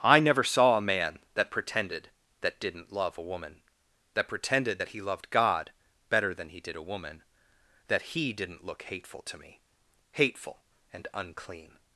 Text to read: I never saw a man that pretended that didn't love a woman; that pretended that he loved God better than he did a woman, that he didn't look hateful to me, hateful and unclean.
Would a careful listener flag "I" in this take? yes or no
no